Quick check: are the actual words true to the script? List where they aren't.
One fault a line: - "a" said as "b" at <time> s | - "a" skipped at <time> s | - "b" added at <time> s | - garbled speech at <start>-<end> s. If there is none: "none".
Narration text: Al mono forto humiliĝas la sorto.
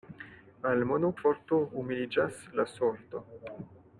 none